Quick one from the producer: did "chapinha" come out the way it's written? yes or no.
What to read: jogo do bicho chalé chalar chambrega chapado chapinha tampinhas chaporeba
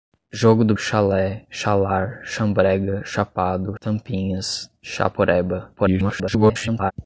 no